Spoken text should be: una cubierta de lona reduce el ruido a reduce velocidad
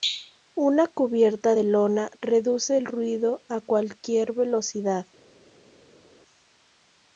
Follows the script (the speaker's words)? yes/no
no